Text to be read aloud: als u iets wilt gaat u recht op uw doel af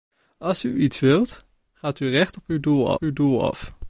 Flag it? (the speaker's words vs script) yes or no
yes